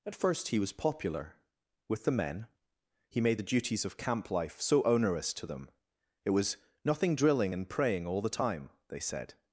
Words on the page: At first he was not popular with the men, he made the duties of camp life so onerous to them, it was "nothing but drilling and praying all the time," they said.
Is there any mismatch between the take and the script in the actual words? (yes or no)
yes